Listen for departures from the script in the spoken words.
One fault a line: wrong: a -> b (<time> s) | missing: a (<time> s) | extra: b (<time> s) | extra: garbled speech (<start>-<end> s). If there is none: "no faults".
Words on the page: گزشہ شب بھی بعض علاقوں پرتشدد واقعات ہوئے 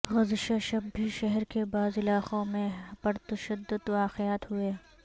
extra: شہر کے (1.1 s)
extra: میں (2.5 s)